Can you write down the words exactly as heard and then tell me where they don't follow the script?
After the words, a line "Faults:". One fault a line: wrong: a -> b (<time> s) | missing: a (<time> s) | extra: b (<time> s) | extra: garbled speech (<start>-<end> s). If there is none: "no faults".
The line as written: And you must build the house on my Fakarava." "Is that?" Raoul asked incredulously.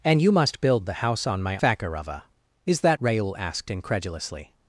And you must build the house on my Fakarava." "Is that?" Raoul asked incredulously.
Faults:
no faults